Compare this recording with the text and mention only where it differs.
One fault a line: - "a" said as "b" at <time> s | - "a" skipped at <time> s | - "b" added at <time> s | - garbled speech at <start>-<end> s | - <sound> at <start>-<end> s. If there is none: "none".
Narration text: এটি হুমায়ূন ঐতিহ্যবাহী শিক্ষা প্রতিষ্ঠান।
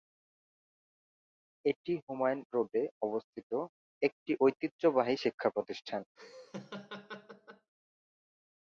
- "রোডে অবস্থিত একটি" added at 2.5 s
- laugh at 6.2-7.7 s